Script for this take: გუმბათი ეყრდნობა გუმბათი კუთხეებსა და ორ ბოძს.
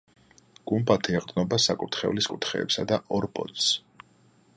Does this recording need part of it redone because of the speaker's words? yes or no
yes